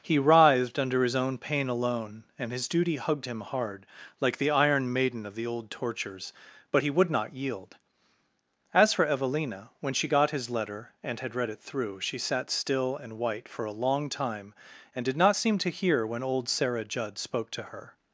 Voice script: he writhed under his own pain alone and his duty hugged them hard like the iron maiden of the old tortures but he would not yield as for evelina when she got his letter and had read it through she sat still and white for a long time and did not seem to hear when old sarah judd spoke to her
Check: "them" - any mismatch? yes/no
yes